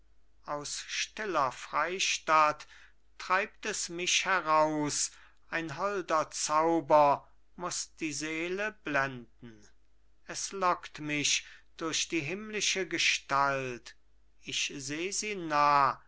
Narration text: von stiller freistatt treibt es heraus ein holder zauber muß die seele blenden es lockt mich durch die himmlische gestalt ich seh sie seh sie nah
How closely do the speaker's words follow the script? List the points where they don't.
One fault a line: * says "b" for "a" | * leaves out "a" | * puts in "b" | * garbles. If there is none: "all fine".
* says "aus" for "von"
* puts in "mich"
* leaves out "seh sie"